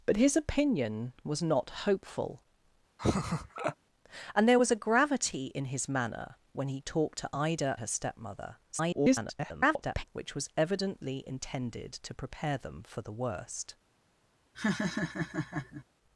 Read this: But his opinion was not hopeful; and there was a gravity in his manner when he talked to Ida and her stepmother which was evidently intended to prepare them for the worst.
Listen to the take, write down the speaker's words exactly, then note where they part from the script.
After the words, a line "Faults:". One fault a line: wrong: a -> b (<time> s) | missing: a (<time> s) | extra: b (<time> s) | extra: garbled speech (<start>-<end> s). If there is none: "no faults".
But his opinion was not hopeful; and there was a gravity in his manner when he talked to Ida her stepmother [garbled] which was evidently intended to prepare them for the worst.
Faults:
missing: and (7.8 s)
extra: garbled speech (8.7-10.0 s)